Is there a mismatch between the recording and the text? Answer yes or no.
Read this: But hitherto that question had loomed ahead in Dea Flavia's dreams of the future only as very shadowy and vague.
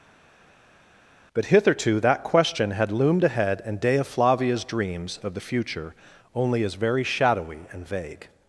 no